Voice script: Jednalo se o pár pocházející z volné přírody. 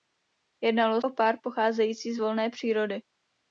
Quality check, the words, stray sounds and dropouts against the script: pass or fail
fail